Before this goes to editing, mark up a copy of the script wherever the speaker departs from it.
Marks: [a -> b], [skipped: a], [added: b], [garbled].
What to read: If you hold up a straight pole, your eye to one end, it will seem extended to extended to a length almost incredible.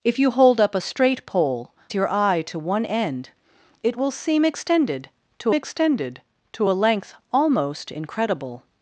If you hold up a straight pole, your eye to one end, it will seem extended to extended to a length almost incredible.